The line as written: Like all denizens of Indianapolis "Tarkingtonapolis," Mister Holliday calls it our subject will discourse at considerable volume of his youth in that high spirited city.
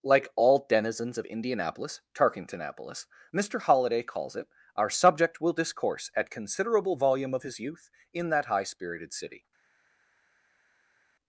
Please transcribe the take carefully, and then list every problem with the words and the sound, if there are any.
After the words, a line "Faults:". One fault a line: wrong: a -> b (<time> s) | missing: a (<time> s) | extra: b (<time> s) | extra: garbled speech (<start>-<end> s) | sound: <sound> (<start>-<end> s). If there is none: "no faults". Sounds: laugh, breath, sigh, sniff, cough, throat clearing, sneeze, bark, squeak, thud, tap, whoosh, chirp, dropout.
Like all denizens of Indianapolis "Tarkingtonapolis," Mister Holliday calls it our subject will discourse at considerable volume of his youth in that high spirited city.
Faults:
no faults